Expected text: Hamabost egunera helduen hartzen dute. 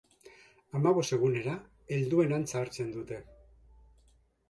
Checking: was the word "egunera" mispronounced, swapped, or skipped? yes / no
no